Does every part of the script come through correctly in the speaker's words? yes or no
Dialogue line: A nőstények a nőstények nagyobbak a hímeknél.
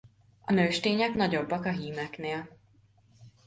no